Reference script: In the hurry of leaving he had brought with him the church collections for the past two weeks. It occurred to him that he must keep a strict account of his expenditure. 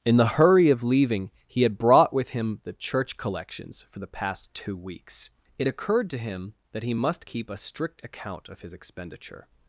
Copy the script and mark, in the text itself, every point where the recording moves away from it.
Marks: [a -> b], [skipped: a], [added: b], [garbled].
In the hurry of leaving he had brought with him the church collections for the past two weeks. It occurred to him that he must keep a strict account of his expenditure.